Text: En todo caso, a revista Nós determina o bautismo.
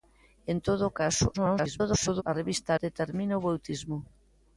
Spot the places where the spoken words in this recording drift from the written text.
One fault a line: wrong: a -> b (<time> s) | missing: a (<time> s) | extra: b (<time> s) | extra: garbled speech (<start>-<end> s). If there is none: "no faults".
extra: garbled speech (1.3-2.2 s)
missing: Nós (2.7 s)